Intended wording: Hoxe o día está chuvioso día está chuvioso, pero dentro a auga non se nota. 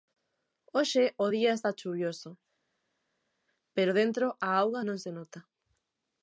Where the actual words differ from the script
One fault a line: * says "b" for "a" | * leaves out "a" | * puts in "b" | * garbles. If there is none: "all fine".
* leaves out "día está chuvioso"